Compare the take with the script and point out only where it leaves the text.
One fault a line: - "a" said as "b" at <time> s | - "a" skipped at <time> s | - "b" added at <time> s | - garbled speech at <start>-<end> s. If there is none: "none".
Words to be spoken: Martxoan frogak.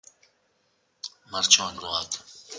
none